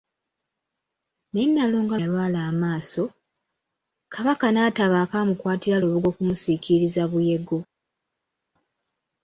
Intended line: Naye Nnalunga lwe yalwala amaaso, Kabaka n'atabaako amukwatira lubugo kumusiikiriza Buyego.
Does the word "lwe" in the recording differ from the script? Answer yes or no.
yes